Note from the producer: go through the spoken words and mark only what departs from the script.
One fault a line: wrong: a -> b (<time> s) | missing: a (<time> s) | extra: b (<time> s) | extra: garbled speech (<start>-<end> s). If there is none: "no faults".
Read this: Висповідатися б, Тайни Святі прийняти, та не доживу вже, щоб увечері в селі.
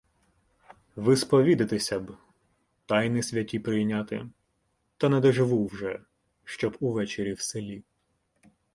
no faults